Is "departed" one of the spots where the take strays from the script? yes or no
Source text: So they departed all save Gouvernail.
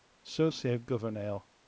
yes